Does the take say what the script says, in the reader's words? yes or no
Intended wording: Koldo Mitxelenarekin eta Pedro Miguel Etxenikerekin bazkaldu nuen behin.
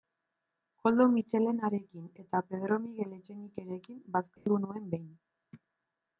yes